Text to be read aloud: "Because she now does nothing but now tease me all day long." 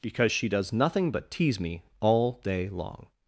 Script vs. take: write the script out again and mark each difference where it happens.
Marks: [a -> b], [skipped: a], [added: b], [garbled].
"Because she [skipped: now] does nothing but [skipped: now] tease me all day long."